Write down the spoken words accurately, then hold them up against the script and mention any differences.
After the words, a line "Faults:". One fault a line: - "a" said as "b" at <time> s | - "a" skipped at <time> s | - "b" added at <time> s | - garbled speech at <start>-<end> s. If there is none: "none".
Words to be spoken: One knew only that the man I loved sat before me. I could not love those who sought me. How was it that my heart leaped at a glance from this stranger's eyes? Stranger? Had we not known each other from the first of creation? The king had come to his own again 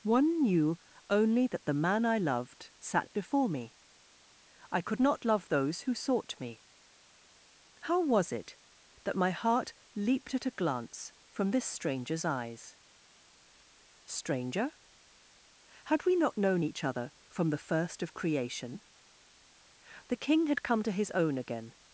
One knew only that the man I loved sat before me. I could not love those who sought me. How was it that my heart leaped at a glance from this stranger's eyes? Stranger? Had we not known each other from the first of creation? The king had come to his own again
Faults:
none